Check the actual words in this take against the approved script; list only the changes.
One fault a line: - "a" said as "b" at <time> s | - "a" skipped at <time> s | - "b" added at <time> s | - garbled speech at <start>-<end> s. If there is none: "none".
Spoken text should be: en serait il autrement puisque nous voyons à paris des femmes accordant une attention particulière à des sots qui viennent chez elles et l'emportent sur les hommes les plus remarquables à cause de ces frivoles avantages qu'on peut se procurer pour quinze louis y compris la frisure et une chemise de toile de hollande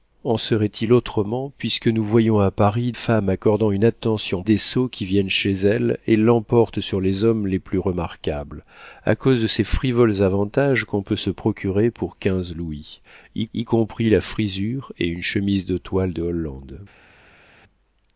- "des" skipped at 2.9 s
- "particulière à" skipped at 4.4 s
- "y" added at 13.5 s